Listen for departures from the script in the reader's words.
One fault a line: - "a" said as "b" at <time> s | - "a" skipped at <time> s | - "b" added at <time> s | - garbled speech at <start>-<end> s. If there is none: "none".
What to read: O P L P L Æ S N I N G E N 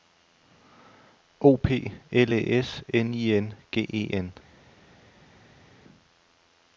- "P L" skipped at 2.3 s